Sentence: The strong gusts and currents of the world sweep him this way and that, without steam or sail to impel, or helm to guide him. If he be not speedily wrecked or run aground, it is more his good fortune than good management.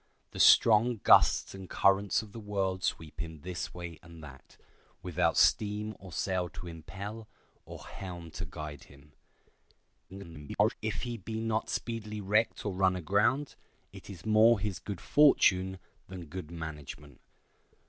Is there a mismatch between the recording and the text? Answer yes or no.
yes